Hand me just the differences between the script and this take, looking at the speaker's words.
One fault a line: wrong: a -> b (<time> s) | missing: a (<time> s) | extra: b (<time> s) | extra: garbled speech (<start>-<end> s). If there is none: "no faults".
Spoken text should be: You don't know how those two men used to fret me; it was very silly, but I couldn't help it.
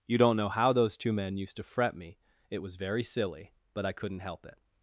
no faults